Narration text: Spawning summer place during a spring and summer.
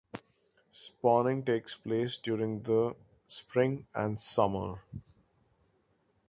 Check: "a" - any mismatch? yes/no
yes